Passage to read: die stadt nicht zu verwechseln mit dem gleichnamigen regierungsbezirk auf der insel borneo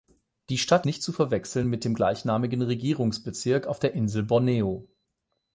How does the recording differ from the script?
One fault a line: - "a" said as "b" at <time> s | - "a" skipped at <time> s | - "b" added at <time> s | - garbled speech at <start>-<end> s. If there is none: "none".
none